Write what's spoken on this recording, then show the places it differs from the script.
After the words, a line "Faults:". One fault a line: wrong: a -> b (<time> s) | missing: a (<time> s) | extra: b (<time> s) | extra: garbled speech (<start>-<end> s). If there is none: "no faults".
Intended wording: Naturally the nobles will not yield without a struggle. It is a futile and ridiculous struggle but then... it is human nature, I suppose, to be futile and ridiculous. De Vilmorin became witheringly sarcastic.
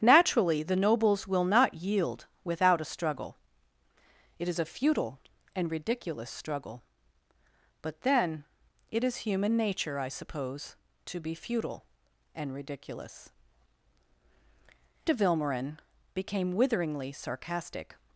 Naturally the nobles will not yield without a struggle. It is a futile and ridiculous struggle but then... it is human nature, I suppose, to be futile and ridiculous. De Vilmorin became witheringly sarcastic.
Faults:
no faults